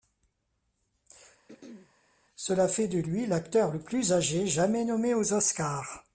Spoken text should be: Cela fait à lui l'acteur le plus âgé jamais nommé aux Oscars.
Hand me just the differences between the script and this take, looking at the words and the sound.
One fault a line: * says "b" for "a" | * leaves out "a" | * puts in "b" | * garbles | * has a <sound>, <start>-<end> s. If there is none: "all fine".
* has a throat clearing, 1.5-1.9 s
* says "de" for "à"